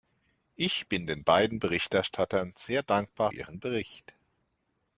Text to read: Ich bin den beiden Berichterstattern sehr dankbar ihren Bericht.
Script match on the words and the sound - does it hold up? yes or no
yes